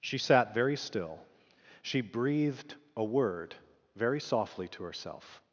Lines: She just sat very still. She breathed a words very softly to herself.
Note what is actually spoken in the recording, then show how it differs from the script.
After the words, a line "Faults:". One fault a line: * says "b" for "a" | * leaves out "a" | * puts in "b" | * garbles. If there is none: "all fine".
She sat very still. She breathed a word very softly to herself.
Faults:
* leaves out "just"
* says "word" for "words"